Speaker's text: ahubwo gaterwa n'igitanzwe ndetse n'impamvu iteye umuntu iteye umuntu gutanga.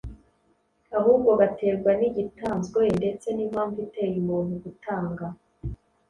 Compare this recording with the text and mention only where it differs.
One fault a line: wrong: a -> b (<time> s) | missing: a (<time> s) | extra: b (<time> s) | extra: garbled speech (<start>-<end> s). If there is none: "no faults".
missing: iteye umuntu (4.5 s)